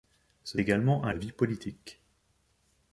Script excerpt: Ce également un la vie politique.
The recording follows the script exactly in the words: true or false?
true